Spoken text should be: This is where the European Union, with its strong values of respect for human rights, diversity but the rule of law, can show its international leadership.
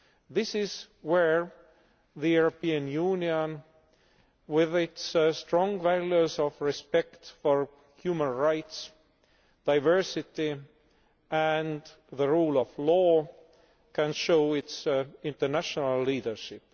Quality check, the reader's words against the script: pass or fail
fail